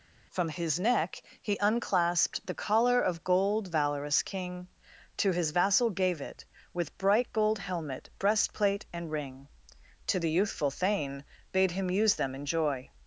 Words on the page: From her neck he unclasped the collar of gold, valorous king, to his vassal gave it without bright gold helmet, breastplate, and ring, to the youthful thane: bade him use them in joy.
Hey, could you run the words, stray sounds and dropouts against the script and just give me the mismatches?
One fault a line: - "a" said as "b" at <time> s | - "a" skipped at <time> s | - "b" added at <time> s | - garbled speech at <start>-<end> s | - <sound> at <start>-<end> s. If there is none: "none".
- "her" said as "his" at 0.5 s
- "without" said as "with" at 6.7 s